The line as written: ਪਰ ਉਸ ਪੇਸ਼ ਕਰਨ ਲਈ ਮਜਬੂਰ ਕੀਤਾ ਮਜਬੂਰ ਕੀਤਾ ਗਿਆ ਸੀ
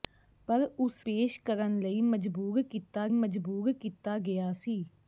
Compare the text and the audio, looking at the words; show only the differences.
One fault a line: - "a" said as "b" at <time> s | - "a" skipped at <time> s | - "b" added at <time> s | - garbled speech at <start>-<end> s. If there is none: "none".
none